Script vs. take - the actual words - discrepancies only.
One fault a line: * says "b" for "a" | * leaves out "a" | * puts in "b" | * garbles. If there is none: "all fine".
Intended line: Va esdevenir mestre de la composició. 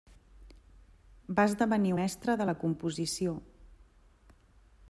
all fine